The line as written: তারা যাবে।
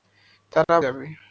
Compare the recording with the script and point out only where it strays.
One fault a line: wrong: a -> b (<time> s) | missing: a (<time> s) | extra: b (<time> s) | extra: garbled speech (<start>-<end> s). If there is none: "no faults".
no faults